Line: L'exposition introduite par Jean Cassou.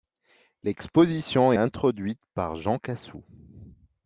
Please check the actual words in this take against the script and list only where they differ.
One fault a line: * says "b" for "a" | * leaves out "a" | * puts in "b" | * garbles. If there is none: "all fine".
all fine